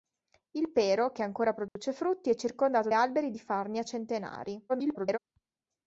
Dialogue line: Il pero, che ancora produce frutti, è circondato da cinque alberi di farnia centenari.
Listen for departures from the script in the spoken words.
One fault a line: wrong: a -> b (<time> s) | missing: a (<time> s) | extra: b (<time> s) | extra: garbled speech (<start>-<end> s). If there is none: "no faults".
missing: da cinque (2.9 s)
extra: garbled speech (4.7-5.2 s)